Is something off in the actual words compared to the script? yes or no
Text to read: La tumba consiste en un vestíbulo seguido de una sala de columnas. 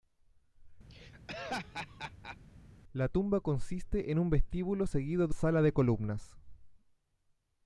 yes